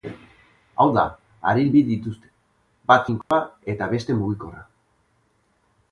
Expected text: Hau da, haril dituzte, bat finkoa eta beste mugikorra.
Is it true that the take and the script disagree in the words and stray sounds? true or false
true